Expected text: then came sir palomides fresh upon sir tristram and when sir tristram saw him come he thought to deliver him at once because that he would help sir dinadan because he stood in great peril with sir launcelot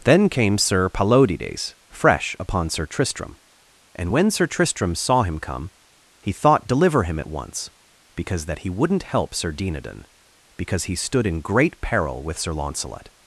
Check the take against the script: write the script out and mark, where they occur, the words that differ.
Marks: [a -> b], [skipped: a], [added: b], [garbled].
then came sir palomides fresh upon sir tristram and when sir tristram saw him come he thought [skipped: to] deliver him at once because that he [would -> wouldn't] help sir dinadan because he stood in great peril with sir launcelot